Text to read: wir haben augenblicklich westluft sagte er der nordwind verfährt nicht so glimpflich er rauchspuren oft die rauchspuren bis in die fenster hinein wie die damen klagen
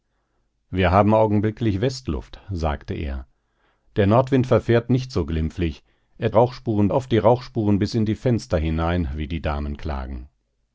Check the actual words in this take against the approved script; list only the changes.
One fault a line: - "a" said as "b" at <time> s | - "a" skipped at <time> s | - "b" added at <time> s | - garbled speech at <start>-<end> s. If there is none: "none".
none